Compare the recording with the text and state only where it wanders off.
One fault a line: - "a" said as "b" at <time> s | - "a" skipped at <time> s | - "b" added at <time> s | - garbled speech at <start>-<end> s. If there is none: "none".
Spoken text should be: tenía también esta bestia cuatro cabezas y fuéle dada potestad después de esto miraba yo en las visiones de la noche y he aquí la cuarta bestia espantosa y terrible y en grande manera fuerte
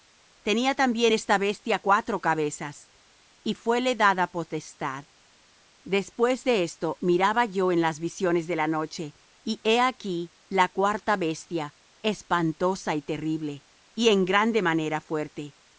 none